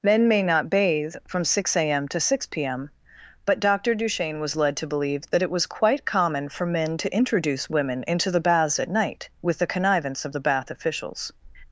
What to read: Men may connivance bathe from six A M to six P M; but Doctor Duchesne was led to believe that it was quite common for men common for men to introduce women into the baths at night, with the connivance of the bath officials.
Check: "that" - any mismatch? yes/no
no